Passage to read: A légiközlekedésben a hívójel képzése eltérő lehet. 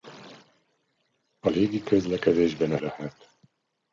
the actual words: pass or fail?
fail